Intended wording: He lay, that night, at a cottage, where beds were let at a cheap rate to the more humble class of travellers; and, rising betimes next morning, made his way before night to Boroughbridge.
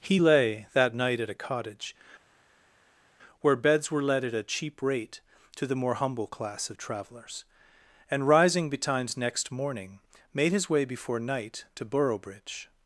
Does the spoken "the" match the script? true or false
true